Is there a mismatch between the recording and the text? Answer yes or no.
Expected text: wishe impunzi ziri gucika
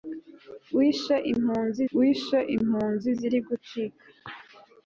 yes